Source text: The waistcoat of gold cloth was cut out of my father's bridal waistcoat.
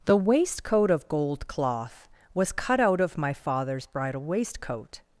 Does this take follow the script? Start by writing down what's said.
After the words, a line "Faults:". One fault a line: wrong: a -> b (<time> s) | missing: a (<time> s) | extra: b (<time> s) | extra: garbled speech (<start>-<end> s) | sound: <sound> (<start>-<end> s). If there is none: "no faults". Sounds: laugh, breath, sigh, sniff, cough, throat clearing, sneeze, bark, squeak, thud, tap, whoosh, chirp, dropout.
The waistcoat of gold cloth was cut out of my father's bridal waistcoat.
Faults:
no faults